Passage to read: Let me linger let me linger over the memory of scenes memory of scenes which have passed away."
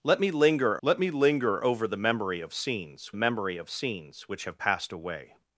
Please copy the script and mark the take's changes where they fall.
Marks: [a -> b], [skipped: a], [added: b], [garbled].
Let me linger let me linger over the memory of scenes memory of scenes which have passed away."